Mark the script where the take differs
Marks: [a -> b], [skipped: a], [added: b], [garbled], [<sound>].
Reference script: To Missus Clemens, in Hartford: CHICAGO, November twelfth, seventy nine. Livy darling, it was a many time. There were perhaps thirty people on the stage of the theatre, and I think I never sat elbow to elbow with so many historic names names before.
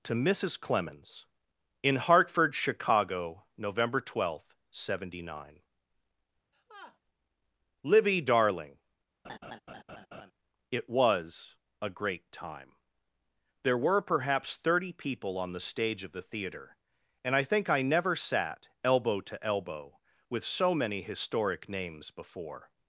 To Missus Clemens, in Hartford: CHICAGO, November twelfth, seventy nine. [laugh] Livy darling, [laugh] it was a [many -> great] time. There were perhaps thirty people on the stage of the theatre, and I think I never sat elbow to elbow with so many historic names [skipped: names] before.